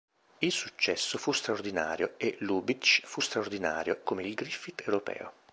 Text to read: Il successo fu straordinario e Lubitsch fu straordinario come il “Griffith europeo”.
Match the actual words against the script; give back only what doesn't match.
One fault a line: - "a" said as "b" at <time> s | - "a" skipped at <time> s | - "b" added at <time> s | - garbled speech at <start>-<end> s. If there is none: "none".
none